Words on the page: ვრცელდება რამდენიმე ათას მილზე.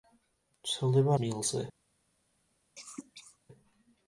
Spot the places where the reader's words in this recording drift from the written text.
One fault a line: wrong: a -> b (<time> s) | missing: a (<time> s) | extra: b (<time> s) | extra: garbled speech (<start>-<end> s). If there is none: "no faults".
missing: რამდენიმე ათას (1.2 s)